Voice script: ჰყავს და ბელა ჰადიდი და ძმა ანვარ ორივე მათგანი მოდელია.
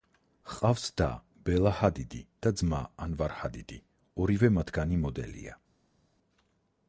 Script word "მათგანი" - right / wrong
right